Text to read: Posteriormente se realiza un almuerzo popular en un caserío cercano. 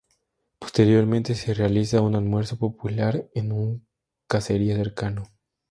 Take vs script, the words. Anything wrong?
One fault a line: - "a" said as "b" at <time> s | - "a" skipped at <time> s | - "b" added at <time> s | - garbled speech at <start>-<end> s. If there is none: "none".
none